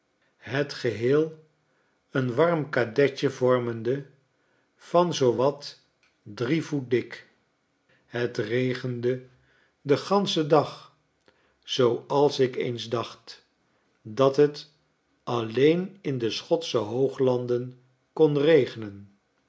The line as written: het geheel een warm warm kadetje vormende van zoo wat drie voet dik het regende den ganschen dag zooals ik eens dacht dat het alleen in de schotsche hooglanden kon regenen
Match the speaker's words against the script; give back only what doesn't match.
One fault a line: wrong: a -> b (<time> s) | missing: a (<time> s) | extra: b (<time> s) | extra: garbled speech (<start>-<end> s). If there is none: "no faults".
missing: warm (2.7 s)